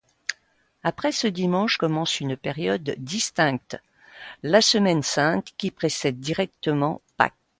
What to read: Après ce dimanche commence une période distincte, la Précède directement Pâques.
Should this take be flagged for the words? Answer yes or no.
yes